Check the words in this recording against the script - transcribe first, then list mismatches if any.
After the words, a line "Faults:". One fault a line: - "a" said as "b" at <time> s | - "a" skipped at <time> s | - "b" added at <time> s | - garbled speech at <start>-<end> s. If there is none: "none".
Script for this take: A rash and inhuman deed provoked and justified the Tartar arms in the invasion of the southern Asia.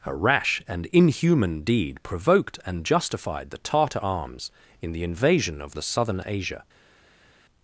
A rash and inhuman deed provoked and justified the Tartar arms in the invasion of the southern Asia.
Faults:
none